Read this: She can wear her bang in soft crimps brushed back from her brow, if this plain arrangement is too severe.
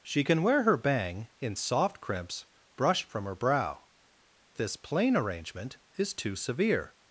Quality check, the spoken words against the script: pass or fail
fail